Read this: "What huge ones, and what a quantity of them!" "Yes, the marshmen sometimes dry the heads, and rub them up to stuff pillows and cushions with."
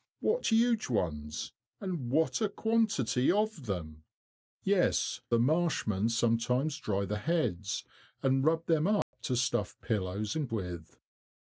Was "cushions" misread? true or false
true